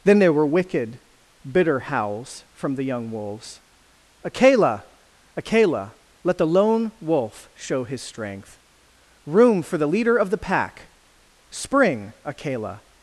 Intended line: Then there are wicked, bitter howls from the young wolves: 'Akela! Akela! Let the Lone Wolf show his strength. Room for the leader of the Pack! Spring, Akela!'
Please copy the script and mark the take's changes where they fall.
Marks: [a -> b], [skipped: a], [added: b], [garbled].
Then there [are -> were] wicked, bitter howls from the young wolves: 'Akela! Akela! Let the Lone Wolf show his strength. Room for the leader of the Pack! Spring, Akela!'